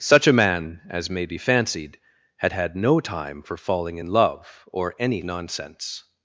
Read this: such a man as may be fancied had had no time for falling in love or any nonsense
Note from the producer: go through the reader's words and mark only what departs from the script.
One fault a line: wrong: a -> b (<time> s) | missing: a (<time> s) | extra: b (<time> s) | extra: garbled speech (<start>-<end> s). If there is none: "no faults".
no faults